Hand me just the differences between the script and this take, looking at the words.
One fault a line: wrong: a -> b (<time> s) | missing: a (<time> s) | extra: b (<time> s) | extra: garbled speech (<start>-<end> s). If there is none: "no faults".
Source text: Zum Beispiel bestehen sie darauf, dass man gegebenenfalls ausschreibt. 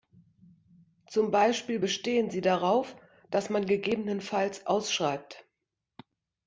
no faults